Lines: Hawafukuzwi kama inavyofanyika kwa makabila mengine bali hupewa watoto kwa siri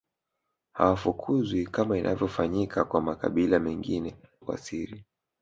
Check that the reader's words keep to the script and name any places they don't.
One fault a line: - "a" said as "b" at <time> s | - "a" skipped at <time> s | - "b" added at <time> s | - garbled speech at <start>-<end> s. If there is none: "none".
- "bali hupewa watoto" skipped at 4.2 s